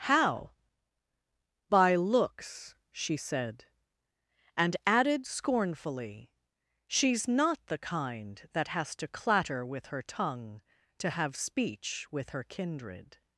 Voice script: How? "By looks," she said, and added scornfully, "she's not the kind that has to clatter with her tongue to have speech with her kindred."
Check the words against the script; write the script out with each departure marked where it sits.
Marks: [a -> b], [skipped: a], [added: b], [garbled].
How? "By looks," she said, and added scornfully, "she's not the kind that has to clatter with her tongue to have speech with her kindred."